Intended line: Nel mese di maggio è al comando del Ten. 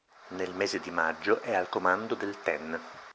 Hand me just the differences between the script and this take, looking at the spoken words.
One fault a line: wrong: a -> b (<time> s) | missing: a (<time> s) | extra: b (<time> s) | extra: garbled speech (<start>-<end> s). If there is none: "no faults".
no faults